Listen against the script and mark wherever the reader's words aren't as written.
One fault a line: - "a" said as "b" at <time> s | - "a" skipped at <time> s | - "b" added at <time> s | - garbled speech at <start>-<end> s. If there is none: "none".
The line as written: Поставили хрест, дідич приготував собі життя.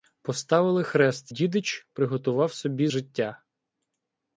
none